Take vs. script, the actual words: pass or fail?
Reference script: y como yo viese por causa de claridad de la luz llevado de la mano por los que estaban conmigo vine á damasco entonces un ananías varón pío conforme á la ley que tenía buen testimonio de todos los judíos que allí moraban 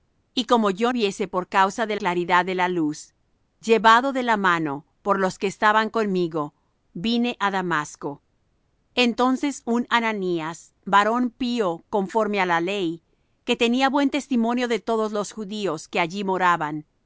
pass